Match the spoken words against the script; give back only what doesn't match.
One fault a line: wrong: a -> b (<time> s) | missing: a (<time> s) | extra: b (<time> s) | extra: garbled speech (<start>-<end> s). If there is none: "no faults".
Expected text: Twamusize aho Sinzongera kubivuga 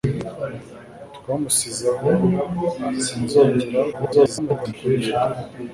extra: garbled speech (3.9-4.7 s)